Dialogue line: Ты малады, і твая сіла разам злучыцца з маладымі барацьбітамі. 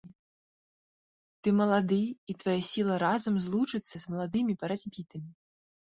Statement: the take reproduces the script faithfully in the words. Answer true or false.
true